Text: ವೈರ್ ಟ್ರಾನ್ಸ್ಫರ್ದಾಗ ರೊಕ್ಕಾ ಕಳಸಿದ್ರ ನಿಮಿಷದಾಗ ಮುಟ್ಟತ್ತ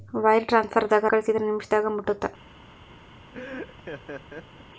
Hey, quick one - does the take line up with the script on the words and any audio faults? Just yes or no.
no